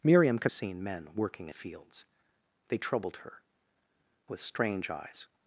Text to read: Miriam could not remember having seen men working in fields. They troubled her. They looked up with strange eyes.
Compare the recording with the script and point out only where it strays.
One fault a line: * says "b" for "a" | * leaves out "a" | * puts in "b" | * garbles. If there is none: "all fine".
* leaves out "not remember having"
* leaves out "in"
* leaves out "They looked up"